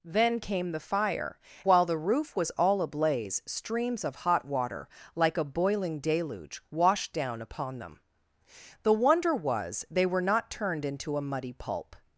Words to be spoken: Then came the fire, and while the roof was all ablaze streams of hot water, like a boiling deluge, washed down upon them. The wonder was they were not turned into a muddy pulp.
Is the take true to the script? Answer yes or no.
no